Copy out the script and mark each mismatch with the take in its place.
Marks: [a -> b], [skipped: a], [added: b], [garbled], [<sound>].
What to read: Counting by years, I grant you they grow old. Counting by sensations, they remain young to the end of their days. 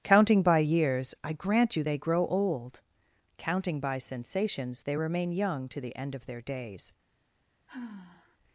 Counting by years, I grant you they grow old. Counting by sensations, they remain young to the end of their days. [sigh]